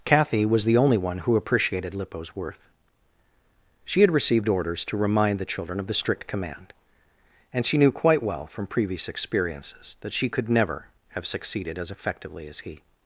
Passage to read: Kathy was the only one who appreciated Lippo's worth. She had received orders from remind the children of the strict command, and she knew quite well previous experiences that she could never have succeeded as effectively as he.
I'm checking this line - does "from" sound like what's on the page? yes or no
no